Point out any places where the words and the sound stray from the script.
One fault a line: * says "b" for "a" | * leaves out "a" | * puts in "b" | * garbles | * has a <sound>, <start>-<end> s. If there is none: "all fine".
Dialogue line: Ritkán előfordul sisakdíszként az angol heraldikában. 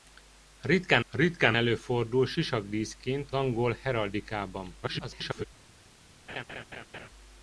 * puts in "ritkán"
* leaves out "az"
* garbles
* has a laugh, 6.3-7.1 s